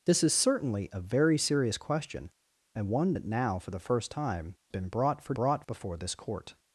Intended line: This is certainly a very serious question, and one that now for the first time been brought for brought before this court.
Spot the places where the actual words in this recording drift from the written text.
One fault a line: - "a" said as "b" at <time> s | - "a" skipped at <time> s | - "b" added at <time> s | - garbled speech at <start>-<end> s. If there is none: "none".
none